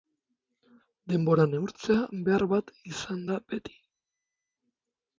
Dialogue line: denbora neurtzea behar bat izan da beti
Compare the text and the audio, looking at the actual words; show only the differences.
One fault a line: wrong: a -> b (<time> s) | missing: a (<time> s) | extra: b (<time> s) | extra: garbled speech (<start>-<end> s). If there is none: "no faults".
no faults